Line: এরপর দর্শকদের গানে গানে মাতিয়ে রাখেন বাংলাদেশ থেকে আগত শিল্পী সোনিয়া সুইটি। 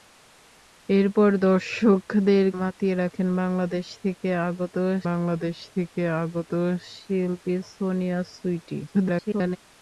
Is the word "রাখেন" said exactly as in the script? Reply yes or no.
no